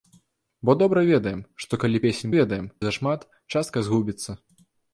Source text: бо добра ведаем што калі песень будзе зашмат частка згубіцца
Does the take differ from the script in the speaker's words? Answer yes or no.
yes